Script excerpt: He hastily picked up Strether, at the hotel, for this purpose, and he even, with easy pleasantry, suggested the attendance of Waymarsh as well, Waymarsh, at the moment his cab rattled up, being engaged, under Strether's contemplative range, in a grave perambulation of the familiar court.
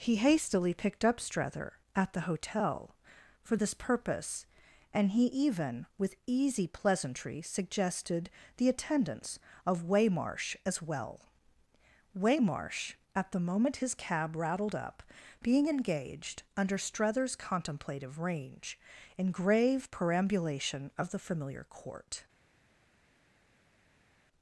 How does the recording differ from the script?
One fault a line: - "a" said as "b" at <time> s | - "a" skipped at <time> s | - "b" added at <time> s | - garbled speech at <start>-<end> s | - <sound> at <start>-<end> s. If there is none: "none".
- "a" skipped at 19.3 s